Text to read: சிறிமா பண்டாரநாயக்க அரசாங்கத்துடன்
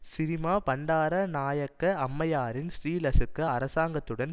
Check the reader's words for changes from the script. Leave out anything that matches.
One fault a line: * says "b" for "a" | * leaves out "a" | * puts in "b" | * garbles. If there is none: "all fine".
* puts in "அம்மையாரின் ஸ்ரீலசுக"